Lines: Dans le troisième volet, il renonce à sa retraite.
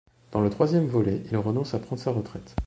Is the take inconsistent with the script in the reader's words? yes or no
yes